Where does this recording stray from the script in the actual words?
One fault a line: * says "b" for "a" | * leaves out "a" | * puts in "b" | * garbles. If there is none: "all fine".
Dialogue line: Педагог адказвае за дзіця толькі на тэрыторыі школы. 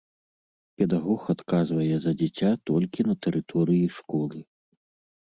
all fine